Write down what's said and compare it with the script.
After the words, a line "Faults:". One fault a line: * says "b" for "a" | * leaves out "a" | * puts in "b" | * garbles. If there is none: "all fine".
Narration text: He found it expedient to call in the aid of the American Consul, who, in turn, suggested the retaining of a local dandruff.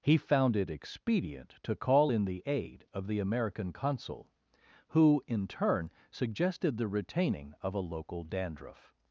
He found it expedient to call in the aid of the American Consul, who, in turn, suggested the retaining of a local dandruff.
Faults:
all fine